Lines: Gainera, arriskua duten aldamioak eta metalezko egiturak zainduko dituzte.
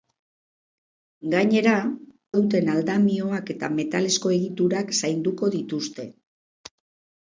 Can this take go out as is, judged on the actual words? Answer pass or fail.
fail